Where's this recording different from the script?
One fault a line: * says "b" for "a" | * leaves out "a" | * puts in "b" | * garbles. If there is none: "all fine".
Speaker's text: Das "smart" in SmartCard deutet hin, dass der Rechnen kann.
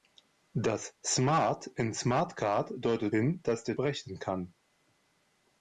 all fine